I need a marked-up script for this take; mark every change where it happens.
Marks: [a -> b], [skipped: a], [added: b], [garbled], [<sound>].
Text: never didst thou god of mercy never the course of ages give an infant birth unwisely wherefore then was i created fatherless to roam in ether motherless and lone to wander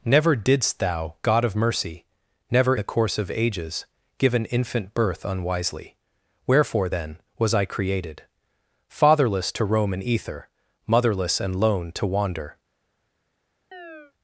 never didst thou god of mercy never the course of ages give an infant birth unwisely wherefore then was i created fatherless to roam in ether motherless and lone to wander [chirp]